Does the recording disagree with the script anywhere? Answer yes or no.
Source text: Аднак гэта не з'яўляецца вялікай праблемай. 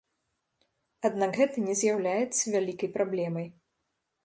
no